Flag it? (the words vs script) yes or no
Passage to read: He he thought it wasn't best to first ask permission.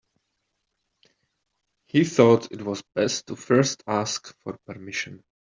yes